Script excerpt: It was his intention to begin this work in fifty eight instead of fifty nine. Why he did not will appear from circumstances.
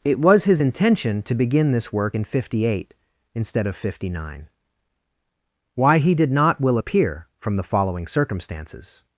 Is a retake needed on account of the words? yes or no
yes